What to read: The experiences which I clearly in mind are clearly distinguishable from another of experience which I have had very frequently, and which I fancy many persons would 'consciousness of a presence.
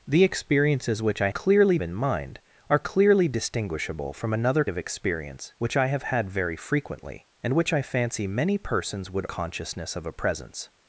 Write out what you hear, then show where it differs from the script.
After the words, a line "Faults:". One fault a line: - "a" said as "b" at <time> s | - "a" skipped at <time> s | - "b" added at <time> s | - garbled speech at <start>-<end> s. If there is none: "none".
The experiences which I clearly in mind are clearly distinguishable from another of experience which I have had very frequently, and which I fancy many persons would 'consciousness of a presence.
Faults:
none